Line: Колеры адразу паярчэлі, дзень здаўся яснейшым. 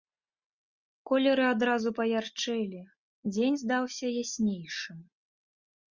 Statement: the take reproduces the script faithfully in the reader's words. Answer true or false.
true